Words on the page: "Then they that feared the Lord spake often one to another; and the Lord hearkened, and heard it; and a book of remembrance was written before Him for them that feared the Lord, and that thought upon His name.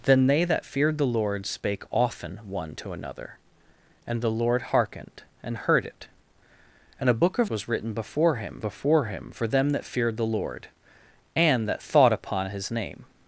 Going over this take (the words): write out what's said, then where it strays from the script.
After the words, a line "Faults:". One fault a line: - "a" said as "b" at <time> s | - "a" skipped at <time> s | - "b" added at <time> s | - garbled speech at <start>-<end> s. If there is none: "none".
"Then they that feared the Lord spake often one to another; and the Lord hearkened, and heard it; and a book of was written before Him before Him for them that feared the Lord, and that thought upon His name.
Faults:
- "remembrance" skipped at 7.5 s
- "before Him" added at 8.6 s